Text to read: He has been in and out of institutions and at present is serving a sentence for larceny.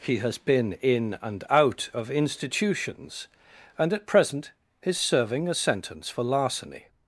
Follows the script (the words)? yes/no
yes